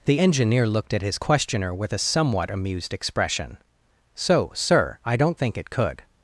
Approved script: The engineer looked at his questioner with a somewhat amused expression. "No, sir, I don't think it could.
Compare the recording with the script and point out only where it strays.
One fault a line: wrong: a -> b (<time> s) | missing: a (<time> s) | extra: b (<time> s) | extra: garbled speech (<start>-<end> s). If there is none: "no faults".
wrong: No -> So (4.1 s)